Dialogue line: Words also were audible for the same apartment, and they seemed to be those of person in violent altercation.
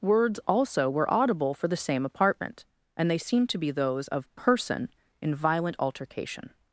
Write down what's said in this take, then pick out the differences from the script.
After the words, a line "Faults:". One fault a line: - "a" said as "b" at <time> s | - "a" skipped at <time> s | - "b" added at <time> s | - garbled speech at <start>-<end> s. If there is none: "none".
Words also were audible for the same apartment, and they seemed to be those of person in violent altercation.
Faults:
none